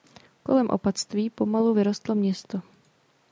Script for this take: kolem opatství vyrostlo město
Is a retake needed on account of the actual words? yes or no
yes